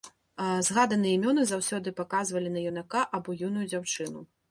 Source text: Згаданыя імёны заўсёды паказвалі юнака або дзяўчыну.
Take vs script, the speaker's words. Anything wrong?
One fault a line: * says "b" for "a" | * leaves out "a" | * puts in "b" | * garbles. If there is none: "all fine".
* puts in "на"
* puts in "юную"